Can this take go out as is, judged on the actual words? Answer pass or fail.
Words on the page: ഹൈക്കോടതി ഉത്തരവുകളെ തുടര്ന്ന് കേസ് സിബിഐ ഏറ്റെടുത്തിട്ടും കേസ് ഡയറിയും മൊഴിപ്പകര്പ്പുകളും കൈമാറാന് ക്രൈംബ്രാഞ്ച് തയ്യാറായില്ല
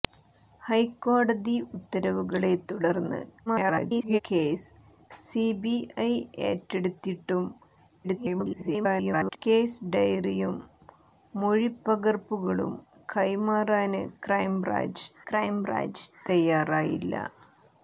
fail